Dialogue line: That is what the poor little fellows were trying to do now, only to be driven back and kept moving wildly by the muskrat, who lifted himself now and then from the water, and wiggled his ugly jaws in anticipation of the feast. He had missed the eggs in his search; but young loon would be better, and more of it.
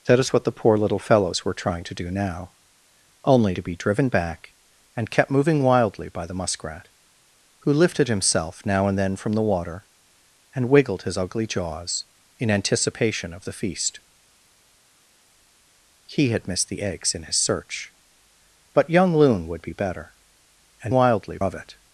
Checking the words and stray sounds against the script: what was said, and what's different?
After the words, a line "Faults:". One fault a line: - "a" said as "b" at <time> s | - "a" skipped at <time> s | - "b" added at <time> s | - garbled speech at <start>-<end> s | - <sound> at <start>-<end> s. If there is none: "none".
That is what the poor little fellows were trying to do now, only to be driven back and kept moving wildly by the muskrat, who lifted himself now and then from the water, and wiggled his ugly jaws in anticipation of the feast. He had missed the eggs in his search; but young loon would be better, and wildly of it.
Faults:
- "more" said as "wildly" at 20.9 s